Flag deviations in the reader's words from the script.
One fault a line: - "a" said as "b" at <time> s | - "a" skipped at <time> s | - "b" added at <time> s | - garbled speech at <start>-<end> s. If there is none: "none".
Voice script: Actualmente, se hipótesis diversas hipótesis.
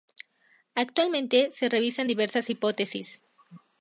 - "hipótesis" said as "revisan" at 1.7 s